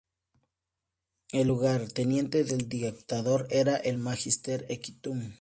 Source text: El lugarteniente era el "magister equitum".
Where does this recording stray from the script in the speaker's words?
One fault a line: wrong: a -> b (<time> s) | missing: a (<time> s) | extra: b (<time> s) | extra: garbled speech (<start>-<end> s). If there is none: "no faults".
extra: del dictador (2.5 s)